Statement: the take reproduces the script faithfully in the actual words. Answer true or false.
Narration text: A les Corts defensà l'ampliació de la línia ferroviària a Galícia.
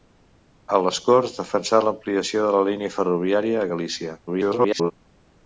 false